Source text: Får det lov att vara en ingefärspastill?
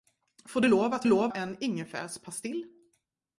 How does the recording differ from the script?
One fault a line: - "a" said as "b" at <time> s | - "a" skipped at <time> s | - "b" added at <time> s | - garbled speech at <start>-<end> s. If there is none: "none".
- "vara" said as "lov" at 1.1 s